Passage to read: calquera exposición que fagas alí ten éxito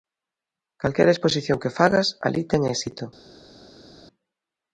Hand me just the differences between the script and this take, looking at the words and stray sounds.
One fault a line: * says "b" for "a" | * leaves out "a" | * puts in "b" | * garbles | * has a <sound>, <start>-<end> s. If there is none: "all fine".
all fine